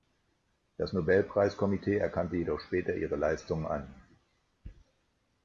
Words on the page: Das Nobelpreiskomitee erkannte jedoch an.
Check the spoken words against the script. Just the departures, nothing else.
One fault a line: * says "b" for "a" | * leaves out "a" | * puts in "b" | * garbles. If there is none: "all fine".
* puts in "später ihre Leistungen"